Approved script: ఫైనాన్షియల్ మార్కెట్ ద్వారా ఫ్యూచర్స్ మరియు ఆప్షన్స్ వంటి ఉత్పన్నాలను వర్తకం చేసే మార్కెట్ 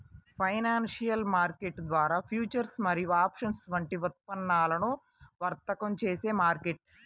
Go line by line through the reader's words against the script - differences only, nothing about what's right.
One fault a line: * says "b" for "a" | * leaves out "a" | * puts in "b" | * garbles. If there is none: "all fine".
all fine